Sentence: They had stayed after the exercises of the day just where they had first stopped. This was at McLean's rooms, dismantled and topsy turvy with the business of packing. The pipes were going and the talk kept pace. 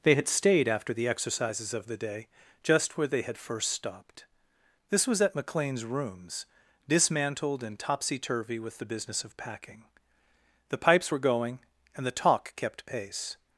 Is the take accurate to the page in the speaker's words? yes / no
yes